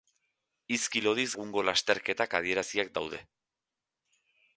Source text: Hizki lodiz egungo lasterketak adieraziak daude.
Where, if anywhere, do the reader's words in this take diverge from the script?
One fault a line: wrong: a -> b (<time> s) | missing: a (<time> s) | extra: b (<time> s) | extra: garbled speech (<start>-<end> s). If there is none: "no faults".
no faults